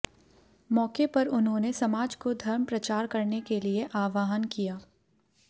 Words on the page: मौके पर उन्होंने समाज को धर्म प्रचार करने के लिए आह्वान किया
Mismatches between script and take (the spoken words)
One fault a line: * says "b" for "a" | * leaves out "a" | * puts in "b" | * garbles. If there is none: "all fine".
all fine